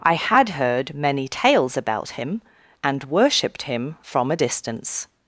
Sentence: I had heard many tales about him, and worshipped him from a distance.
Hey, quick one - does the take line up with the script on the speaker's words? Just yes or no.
yes